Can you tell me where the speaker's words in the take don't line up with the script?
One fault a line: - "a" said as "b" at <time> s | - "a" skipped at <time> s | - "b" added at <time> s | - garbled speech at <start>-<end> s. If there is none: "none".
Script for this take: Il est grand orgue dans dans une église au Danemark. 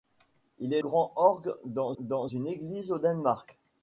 none